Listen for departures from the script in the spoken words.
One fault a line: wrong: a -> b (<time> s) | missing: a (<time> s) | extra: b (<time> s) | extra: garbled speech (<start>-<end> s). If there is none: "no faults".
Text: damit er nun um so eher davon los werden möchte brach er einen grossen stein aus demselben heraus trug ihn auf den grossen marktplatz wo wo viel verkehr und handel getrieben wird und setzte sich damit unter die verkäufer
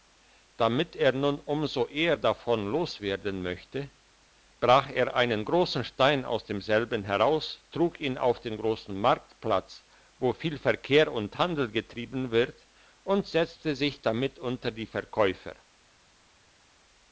missing: wo (10.3 s)